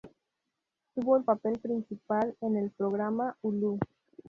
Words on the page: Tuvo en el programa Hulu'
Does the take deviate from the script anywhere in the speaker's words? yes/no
yes